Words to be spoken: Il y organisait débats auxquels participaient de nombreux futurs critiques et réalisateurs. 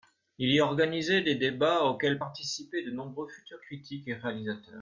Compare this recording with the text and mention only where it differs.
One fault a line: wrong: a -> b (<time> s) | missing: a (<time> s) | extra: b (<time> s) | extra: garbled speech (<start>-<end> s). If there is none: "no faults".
extra: des (1.2 s)